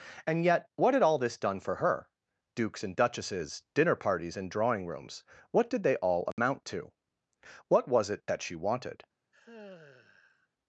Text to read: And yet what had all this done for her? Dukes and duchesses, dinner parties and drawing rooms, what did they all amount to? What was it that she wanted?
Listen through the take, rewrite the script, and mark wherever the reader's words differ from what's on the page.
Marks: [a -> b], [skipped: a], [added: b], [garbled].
And yet what had all this done for her? Dukes and duchesses, dinner parties and drawing rooms, what did they all amount to? What was it that she wanted?